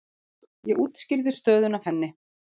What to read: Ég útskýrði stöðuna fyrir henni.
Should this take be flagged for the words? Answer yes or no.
yes